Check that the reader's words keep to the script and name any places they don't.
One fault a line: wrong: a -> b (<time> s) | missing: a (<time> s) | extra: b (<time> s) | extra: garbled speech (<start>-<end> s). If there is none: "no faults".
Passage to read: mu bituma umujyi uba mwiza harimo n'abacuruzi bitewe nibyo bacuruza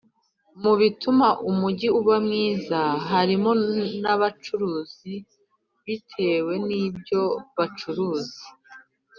no faults